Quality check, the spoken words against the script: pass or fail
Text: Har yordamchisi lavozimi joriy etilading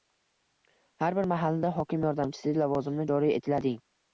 fail